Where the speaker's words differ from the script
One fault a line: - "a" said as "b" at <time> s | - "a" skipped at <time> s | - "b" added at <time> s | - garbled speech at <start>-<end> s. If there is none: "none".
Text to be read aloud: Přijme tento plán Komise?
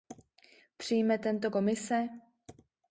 - "plán" skipped at 1.5 s